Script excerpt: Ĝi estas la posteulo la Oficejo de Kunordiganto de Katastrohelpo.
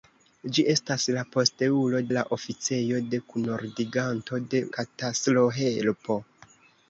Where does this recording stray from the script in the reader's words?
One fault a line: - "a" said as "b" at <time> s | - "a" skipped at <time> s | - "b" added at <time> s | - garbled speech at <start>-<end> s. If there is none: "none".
none